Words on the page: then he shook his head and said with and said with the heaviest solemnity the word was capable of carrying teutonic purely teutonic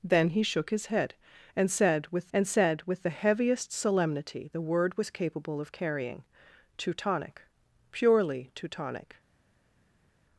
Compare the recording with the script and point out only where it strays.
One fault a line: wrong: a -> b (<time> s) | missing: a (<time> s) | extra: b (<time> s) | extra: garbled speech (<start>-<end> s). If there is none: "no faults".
no faults